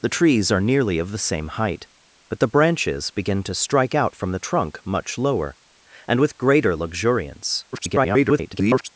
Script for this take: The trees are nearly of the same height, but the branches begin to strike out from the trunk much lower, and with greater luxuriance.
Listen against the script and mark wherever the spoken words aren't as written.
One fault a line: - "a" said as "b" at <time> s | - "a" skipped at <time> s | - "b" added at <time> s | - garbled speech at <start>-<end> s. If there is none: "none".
- garbled speech at 7.7-8.9 s